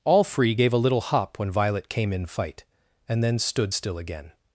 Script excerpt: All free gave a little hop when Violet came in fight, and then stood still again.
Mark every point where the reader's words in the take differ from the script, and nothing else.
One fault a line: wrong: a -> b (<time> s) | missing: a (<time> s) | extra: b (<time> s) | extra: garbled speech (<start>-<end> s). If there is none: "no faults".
no faults